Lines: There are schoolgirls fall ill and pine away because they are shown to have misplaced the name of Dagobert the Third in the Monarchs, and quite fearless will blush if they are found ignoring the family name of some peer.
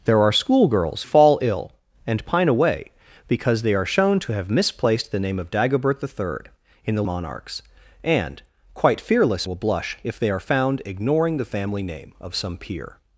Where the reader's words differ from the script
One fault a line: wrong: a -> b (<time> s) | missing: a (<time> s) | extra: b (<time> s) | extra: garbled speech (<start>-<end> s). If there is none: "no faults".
no faults